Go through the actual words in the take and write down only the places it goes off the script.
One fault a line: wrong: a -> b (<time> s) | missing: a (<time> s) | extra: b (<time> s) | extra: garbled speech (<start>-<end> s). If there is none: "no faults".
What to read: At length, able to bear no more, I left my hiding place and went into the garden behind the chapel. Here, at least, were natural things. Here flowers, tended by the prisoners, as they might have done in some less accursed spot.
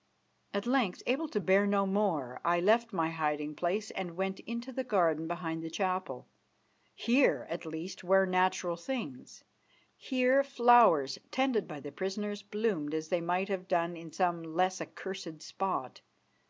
extra: bloomed (12.4 s)